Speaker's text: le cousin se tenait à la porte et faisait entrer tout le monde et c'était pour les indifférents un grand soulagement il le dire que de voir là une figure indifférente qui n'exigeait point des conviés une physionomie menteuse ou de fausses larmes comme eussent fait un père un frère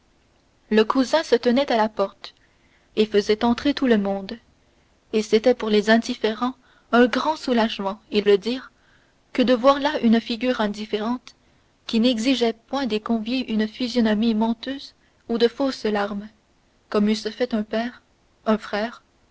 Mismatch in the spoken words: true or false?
false